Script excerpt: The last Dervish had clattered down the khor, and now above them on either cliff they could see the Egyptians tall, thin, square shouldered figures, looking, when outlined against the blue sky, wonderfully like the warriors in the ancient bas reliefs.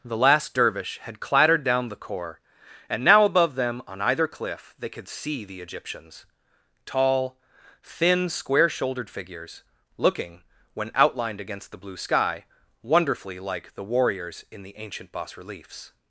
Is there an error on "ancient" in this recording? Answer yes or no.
no